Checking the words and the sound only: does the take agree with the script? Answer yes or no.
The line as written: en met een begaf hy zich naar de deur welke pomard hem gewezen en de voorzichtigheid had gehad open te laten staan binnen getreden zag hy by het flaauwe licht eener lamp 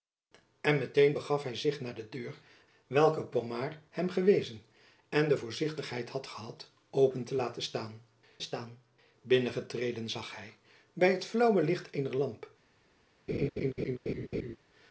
no